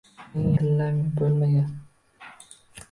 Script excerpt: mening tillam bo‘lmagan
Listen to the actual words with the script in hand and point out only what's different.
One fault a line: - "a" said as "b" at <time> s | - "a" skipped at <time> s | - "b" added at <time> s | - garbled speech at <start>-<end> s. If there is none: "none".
none